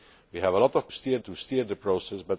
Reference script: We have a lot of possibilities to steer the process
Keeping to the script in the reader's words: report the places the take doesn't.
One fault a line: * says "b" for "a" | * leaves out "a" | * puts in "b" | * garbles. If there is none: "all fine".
* says "steer" for "possibilities"